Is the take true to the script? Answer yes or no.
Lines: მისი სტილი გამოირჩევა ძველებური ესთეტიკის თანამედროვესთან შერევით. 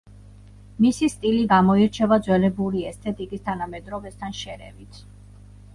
yes